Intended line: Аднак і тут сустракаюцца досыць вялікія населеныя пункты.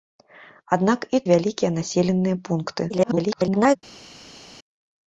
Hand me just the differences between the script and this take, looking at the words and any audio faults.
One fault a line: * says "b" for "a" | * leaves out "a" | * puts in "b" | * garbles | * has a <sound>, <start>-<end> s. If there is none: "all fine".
* leaves out "тут сустракаюцца досыць"
* garbles